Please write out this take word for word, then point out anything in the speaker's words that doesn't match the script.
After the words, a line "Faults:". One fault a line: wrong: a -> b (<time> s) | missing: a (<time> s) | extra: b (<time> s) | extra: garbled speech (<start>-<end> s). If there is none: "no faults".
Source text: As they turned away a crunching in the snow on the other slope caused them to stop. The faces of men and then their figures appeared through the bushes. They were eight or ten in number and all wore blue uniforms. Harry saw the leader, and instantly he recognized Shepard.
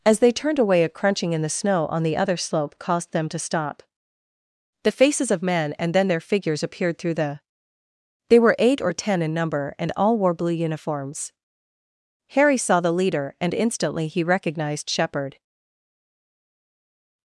As they turned away a crunching in the snow on the other slope caused them to stop. The faces of men and then their figures appeared through the. They were eight or ten in number and all wore blue uniforms. Harry saw the leader, and instantly he recognized Shepard.
Faults:
missing: bushes (7.4 s)